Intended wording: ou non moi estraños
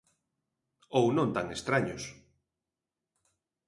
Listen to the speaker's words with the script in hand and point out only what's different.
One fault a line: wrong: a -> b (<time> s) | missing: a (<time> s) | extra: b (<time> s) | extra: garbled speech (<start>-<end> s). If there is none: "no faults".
wrong: moi -> tan (1.4 s)